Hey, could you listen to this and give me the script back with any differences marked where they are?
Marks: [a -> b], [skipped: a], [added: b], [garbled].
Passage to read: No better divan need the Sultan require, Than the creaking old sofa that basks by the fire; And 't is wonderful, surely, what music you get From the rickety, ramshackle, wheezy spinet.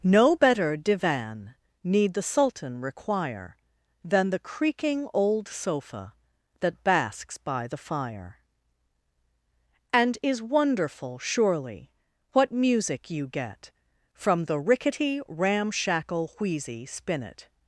No better divan need the Sultan require, Than the creaking old sofa that basks by the fire; And [skipped: 't] is wonderful, surely, what music you get From the rickety, ramshackle, wheezy spinet.